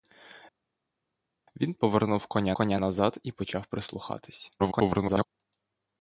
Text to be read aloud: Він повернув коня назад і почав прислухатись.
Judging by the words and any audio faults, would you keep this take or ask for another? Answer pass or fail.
fail